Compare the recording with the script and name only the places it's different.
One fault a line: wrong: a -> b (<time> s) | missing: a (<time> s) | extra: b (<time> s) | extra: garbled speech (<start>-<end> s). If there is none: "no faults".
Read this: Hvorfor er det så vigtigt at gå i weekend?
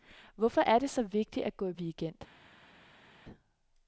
no faults